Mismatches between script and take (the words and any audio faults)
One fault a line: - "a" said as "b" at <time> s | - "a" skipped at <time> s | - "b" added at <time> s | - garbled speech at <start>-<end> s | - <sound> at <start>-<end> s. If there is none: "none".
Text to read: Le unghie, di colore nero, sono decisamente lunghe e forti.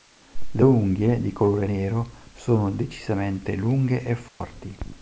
- dropout at 4.3-4.4 s